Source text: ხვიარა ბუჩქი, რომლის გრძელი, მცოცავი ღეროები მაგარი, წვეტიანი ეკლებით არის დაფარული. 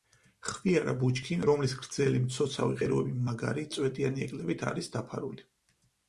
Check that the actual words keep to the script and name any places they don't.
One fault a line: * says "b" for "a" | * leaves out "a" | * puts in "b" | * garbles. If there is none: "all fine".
all fine